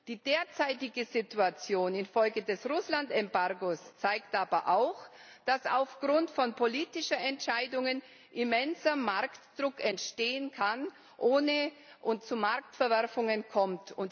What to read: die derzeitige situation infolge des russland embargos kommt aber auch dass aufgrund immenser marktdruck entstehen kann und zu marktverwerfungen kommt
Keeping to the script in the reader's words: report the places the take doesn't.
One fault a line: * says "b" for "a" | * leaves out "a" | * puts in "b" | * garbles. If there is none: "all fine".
* says "zeigt" for "kommt"
* puts in "von politischen entscheidungen"
* puts in "es"